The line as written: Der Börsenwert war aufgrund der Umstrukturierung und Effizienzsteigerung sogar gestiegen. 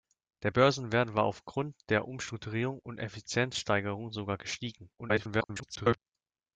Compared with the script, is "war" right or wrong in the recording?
right